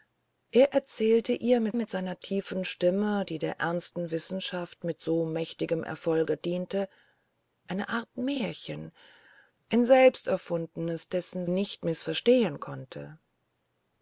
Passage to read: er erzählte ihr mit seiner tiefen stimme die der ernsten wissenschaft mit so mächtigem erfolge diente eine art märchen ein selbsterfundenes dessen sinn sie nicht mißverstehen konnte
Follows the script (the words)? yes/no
no